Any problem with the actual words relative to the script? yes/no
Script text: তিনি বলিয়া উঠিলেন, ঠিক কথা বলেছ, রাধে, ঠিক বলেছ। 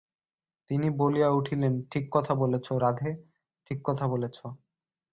yes